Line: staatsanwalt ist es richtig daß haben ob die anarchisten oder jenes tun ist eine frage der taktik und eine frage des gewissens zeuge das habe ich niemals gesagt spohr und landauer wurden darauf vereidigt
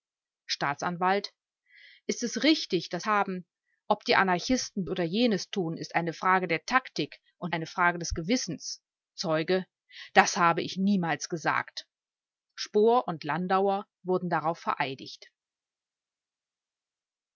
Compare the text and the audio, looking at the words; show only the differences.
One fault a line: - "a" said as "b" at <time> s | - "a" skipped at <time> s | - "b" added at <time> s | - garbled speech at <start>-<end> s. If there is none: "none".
none